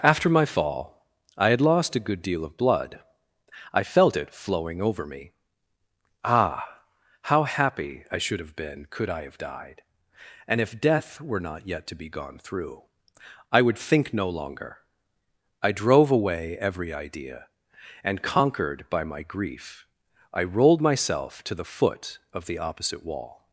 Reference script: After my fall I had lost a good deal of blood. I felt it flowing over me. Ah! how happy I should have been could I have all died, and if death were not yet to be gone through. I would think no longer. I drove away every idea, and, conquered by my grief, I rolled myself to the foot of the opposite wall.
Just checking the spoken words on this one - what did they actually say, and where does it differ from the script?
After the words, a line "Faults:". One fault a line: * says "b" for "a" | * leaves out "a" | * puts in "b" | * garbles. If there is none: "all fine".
After my fall I had lost a good deal of blood. I felt it flowing over me. Ah! how happy I should have been could I have died, and if death were not yet to be gone through. I would think no longer. I drove away every idea, and, conquered by my grief, I rolled myself to the foot of the opposite wall.
Faults:
* leaves out "all"